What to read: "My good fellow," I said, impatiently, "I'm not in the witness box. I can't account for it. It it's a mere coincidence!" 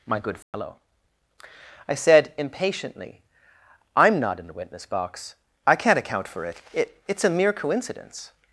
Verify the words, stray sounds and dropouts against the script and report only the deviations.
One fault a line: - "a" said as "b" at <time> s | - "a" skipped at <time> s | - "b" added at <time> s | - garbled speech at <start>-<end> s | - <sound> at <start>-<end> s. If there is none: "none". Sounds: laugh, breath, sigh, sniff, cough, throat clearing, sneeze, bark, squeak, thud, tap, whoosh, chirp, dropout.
- dropout at 0.4-0.5 s